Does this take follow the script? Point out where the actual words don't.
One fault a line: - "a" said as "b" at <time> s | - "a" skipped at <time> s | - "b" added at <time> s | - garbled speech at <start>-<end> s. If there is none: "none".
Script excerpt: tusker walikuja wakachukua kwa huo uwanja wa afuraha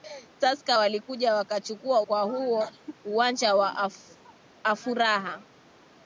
none